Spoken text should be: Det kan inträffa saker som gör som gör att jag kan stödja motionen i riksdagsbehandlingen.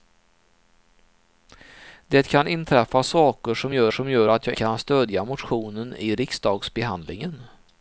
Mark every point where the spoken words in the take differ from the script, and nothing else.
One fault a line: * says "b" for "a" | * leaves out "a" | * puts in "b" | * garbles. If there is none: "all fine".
all fine